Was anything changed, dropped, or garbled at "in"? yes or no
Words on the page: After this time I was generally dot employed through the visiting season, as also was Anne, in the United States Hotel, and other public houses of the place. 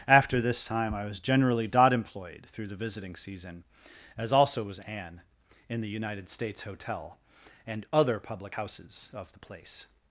no